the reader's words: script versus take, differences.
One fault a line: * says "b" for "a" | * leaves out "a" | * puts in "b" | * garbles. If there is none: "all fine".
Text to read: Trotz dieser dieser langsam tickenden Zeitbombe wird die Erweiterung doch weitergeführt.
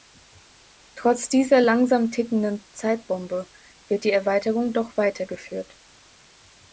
* leaves out "dieser"